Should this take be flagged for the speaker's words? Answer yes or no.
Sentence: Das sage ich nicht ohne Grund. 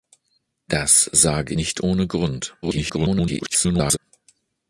yes